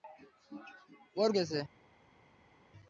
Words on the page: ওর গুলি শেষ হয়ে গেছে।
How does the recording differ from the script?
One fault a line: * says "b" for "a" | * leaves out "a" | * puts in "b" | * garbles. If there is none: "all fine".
* leaves out "গুলি শেষ হয়ে"